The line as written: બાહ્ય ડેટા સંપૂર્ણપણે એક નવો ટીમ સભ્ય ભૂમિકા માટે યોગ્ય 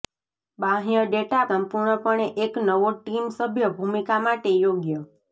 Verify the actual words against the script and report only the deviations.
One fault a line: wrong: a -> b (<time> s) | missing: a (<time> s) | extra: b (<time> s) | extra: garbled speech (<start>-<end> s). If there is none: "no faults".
no faults